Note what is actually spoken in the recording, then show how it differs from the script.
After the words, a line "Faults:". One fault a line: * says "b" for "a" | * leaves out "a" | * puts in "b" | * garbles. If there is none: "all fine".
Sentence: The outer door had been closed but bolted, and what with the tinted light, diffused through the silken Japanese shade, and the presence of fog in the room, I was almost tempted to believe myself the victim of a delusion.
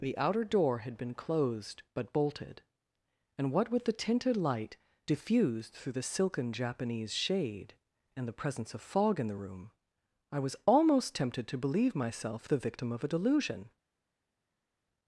The outer door had been closed but bolted, and what with the tinted light, diffused through the silken Japanese shade, and the presence of fog in the room, I was almost tempted to believe myself the victim of a delusion.
Faults:
all fine